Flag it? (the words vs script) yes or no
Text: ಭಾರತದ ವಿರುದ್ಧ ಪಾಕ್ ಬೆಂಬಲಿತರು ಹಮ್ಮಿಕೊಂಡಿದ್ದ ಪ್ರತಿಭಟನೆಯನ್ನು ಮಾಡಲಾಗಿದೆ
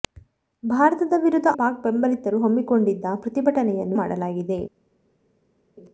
no